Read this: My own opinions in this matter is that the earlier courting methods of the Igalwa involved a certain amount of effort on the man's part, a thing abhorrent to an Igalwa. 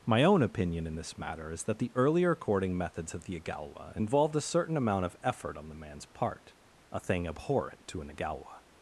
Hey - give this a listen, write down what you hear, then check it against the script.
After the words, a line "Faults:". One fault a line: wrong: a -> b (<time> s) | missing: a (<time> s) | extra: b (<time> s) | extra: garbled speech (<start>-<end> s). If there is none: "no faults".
My own opinion in this matter is that the earlier courting methods of the Igalwa involved a certain amount of effort on the man's part, a thing abhorrent to an Igalwa.
Faults:
wrong: opinions -> opinion (0.4 s)